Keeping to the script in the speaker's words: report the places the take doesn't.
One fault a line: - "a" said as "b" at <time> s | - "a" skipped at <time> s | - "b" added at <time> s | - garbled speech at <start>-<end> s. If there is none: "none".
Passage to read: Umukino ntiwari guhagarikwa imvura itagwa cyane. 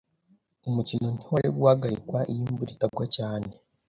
- "iyo" added at 2.3 s